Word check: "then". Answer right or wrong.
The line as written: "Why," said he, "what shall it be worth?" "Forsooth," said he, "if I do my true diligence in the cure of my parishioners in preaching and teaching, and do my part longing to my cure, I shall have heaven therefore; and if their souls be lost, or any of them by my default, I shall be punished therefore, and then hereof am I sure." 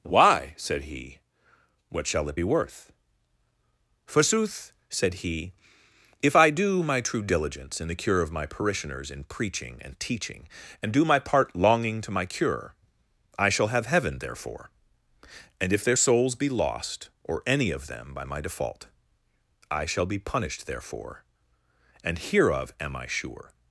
wrong